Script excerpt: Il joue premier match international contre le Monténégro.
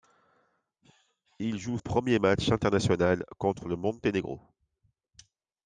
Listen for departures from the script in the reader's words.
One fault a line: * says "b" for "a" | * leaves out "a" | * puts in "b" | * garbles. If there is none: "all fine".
all fine